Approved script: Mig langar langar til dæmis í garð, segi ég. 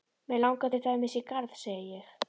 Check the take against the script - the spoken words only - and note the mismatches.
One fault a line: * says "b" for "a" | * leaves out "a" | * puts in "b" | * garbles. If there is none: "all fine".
* leaves out "langar"